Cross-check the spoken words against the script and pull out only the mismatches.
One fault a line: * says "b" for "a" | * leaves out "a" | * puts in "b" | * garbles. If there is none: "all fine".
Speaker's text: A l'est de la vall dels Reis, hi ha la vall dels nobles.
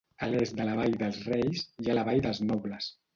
all fine